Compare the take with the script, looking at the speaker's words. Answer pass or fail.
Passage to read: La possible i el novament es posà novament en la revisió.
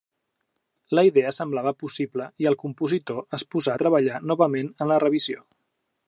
fail